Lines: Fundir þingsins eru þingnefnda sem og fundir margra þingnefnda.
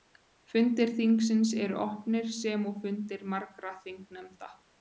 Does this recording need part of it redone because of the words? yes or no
yes